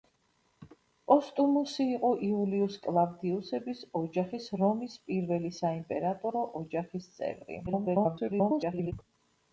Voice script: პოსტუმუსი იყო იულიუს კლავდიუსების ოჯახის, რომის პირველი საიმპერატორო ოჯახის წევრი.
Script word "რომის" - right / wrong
right